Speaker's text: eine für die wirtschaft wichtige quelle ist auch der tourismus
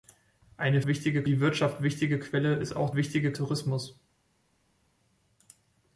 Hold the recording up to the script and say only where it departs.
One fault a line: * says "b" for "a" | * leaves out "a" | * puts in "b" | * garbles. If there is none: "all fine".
* says "wichtige" for "für"
* says "wichtige" for "der"